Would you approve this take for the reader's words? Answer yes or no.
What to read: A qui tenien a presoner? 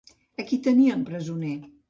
yes